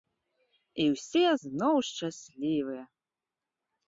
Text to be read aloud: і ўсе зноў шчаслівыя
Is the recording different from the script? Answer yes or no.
no